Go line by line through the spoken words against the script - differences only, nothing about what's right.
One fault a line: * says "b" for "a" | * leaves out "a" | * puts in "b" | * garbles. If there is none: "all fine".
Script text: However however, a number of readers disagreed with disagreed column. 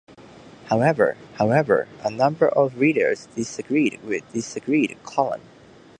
all fine